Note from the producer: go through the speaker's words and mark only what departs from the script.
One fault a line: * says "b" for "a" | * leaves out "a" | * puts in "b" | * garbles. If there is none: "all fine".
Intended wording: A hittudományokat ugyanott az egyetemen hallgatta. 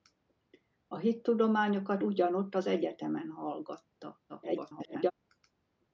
* garbles